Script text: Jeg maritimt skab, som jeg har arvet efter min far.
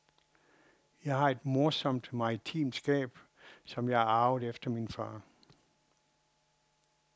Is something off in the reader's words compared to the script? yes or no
yes